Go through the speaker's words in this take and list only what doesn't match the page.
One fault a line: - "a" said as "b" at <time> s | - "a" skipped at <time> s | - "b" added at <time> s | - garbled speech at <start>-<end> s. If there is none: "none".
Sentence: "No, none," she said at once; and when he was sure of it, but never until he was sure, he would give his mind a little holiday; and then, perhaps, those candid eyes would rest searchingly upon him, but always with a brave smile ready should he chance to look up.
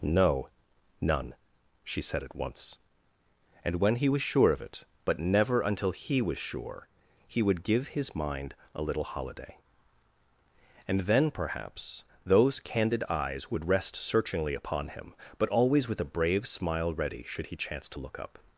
none